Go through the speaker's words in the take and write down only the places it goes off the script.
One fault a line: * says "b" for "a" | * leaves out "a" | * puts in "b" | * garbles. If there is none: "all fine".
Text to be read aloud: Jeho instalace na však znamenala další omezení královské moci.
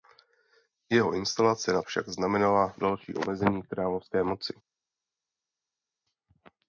all fine